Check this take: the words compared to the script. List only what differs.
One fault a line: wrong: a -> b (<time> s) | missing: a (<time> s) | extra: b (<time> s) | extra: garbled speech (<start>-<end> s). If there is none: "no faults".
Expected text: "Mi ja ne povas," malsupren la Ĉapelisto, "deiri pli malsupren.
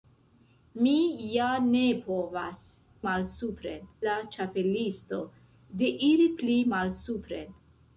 no faults